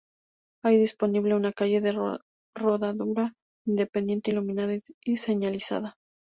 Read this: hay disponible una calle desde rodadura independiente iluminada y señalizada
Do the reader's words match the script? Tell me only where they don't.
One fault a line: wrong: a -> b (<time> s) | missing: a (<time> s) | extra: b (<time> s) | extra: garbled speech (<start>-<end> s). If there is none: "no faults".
wrong: desde -> de (1.8 s)